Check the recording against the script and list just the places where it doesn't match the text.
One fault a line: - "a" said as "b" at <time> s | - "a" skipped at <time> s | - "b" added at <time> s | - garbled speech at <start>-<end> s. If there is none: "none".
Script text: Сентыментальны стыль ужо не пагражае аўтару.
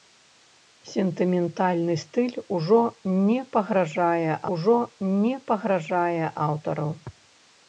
- "ужо не пагражае" added at 4.6 s